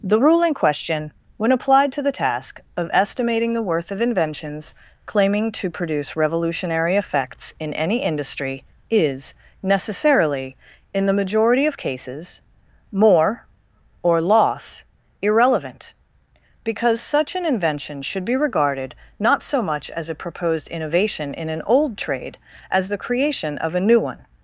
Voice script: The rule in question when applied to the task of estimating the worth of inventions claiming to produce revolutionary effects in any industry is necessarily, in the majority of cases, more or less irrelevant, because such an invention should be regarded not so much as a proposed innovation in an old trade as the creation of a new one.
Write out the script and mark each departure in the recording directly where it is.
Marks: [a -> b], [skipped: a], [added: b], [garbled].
The rule in question when applied to the task of estimating the worth of inventions claiming to produce revolutionary effects in any industry is necessarily, in the majority of cases, more or [less -> loss] irrelevant, because such an invention should be regarded not so much as a proposed innovation in an old trade as the creation of a new one.